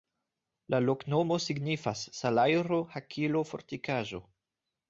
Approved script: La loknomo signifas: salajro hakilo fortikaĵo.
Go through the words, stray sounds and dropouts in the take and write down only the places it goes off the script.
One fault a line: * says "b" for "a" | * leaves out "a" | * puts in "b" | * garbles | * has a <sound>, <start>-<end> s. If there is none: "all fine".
all fine